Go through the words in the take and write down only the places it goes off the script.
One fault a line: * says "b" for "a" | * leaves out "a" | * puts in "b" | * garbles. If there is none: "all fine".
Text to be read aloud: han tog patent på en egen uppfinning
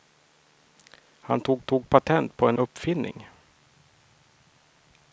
* puts in "tog"
* leaves out "egen"